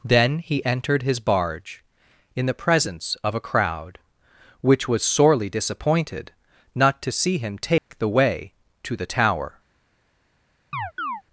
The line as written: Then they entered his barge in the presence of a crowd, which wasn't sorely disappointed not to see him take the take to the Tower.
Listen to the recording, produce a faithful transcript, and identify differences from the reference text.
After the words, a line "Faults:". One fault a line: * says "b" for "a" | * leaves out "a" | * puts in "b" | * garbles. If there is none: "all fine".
Then he entered his barge in the presence of a crowd, which was sorely disappointed not to see him take the way to the Tower.
Faults:
* says "he" for "they"
* says "was" for "wasn't"
* says "way" for "take"